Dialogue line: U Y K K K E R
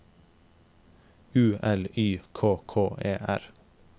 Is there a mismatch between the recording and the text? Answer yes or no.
yes